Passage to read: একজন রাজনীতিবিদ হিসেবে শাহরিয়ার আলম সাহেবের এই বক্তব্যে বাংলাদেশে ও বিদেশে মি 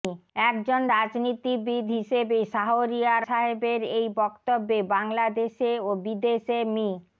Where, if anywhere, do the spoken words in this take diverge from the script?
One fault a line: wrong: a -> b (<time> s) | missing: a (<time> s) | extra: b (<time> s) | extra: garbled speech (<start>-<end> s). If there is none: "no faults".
missing: আলম (3.2 s)